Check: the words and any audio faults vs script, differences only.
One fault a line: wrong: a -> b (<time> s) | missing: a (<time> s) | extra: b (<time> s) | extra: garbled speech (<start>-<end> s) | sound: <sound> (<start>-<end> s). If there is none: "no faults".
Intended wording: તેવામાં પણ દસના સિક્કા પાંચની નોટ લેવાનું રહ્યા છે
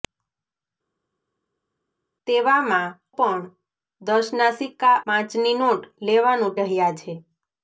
no faults